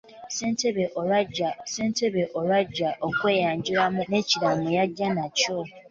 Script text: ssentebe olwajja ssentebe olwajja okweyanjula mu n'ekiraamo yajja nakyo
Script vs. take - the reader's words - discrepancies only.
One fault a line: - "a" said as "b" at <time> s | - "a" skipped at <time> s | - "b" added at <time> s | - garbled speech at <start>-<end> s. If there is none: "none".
none